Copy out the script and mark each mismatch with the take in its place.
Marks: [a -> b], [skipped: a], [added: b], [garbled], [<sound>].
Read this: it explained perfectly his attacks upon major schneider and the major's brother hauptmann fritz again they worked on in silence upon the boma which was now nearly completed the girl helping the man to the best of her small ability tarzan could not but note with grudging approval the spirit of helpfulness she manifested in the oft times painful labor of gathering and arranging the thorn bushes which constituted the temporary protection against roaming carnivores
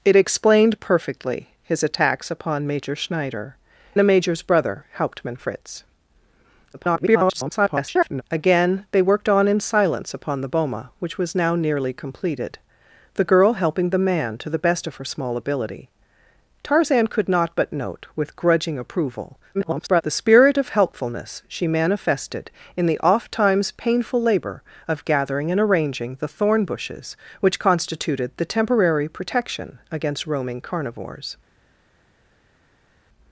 it explained perfectly his attacks upon major schneider [skipped: and] the major's brother hauptmann fritz [garbled] again they worked on in silence upon the boma which was now nearly completed the girl helping the man to the best of her small ability tarzan could not but note with grudging approval [garbled] the spirit of helpfulness she manifested in the oft times painful labor of gathering and arranging the thorn bushes which constituted the temporary protection against roaming carnivores